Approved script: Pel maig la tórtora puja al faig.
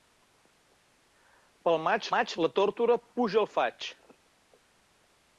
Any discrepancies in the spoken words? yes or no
yes